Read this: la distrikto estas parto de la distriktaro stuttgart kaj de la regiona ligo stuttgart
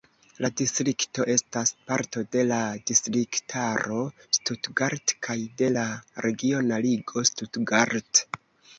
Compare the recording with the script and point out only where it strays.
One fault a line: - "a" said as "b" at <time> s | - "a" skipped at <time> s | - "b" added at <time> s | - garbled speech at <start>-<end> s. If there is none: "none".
none